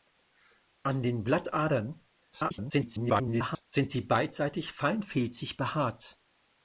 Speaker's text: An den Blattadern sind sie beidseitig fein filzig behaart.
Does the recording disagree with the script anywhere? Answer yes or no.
yes